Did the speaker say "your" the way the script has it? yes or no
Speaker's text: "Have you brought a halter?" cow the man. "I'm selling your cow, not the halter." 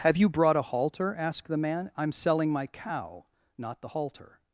no